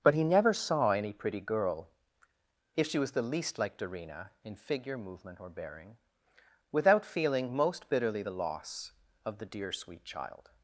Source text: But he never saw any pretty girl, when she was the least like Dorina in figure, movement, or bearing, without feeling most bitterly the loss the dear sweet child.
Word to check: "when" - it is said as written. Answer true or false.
false